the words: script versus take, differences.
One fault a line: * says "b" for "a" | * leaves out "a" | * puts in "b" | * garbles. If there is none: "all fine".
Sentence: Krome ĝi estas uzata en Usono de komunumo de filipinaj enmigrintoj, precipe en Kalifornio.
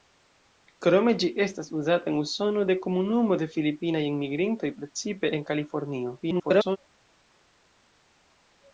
* garbles